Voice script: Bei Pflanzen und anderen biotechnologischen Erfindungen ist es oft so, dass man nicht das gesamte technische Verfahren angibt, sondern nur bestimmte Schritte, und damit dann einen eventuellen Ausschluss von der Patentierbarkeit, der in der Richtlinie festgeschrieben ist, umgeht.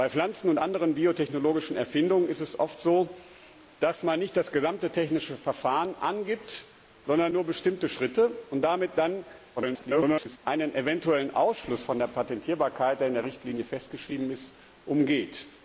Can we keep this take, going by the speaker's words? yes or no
no